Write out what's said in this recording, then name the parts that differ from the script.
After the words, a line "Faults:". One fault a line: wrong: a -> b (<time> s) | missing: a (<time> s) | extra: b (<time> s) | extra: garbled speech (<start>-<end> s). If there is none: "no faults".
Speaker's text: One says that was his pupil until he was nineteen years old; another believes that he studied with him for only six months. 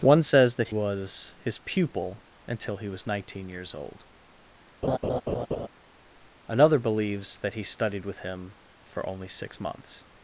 One says that was his pupil until he was nineteen years old; another believes that he studied with him for only six months.
Faults:
no faults